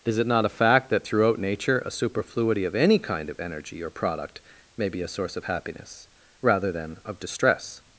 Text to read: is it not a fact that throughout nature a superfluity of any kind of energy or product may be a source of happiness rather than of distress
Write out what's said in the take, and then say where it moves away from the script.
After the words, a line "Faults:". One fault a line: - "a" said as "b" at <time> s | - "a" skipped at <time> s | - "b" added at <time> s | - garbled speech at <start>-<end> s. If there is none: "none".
is it not a fact that throughout nature a superfluity of any kind of energy or product may be a source of happiness rather than of distress
Faults:
none